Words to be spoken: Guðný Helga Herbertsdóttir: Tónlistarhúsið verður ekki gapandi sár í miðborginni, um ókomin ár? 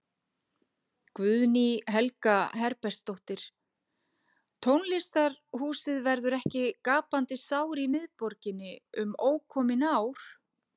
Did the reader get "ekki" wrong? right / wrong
right